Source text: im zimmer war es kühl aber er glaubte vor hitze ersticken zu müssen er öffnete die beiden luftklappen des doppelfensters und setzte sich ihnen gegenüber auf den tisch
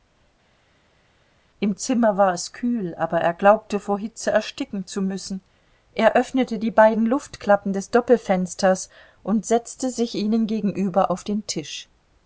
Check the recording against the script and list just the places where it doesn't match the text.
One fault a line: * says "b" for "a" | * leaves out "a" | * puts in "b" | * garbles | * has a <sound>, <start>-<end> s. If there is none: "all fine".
all fine